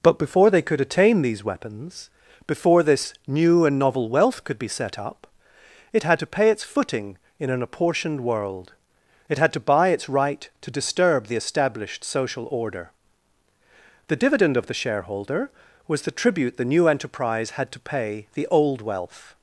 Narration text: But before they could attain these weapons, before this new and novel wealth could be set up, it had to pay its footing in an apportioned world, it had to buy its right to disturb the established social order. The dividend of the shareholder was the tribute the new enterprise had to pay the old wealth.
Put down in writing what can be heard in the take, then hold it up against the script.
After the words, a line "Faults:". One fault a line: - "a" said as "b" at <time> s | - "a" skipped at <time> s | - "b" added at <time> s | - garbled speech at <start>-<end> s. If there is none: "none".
But before they could attain these weapons, before this new and novel wealth could be set up, it had to pay its footing in an apportioned world, it had to buy its right to disturb the established social order. The dividend of the shareholder was the tribute the new enterprise had to pay the old wealth.
Faults:
none